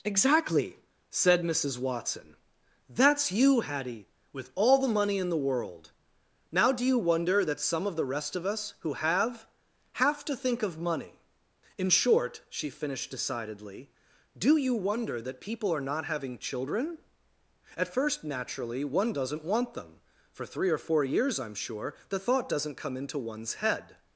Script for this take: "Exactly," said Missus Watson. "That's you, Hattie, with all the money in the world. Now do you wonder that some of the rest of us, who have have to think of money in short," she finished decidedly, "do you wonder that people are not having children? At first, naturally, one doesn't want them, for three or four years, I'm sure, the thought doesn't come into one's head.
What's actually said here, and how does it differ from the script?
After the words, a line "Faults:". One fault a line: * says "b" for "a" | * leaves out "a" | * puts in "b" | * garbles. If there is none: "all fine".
"Exactly," said Missus Watson. "That's you, Hattie, with all the money in the world. Now do you wonder that some of the rest of us, who have have to think of money in short," she finished decidedly, "do you wonder that people are not having children? At first, naturally, one doesn't want them, for three or four years, I'm sure, the thought doesn't come into one's head.
Faults:
all fine